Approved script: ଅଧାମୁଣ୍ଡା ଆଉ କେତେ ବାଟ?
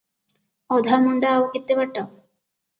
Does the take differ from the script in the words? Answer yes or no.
no